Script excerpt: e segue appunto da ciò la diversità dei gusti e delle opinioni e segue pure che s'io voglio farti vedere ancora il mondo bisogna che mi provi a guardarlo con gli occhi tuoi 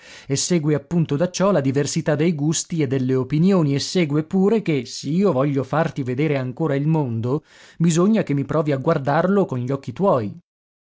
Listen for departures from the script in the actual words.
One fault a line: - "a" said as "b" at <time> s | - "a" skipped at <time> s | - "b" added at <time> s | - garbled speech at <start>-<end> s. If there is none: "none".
none